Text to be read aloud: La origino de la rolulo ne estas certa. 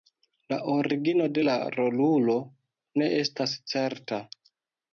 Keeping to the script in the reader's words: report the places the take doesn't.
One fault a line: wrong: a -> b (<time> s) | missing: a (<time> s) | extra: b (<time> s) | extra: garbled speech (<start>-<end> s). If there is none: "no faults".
no faults